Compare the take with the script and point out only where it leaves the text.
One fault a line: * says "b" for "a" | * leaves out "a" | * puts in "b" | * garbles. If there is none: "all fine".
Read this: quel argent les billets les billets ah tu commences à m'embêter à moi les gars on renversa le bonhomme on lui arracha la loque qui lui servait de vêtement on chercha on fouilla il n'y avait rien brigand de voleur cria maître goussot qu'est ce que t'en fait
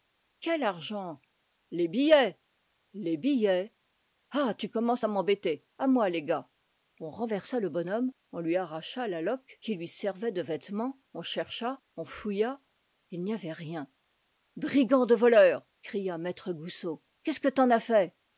* puts in "as"